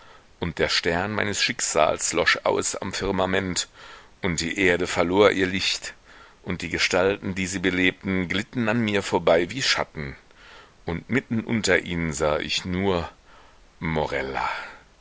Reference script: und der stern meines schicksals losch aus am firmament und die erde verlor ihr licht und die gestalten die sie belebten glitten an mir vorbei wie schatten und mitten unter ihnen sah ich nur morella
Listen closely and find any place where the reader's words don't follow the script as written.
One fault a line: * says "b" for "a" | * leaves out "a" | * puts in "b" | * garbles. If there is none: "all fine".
all fine